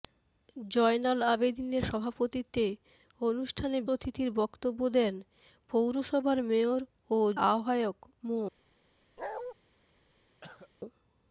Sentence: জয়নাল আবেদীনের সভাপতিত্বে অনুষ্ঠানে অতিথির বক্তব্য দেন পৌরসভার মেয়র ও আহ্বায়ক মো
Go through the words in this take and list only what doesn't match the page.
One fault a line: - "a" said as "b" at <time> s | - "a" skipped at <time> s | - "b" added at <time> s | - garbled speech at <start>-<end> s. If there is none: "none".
none